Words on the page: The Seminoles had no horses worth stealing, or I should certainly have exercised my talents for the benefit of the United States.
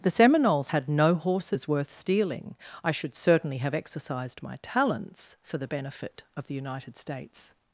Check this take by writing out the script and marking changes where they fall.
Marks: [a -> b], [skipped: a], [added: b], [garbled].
The Seminoles had no horses worth stealing, [skipped: or] I should certainly have exercised my talents for the benefit of the United States.